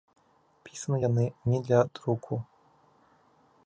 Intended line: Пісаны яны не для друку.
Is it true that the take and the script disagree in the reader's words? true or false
false